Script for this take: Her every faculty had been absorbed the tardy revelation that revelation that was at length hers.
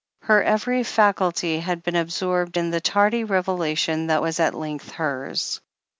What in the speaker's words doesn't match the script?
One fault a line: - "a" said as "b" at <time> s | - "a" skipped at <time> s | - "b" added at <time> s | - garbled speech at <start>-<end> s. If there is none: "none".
- "in" added at 2.5 s
- "revelation that" skipped at 4.2 s